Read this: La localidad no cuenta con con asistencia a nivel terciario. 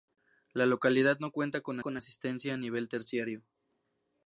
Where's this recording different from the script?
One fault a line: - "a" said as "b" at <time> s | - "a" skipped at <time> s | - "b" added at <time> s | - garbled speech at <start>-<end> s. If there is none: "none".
none